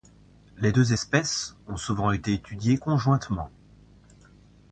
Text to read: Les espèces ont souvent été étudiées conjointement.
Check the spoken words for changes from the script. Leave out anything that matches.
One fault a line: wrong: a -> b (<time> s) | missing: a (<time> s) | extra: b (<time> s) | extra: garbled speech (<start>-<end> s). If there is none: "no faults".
extra: deux (0.7 s)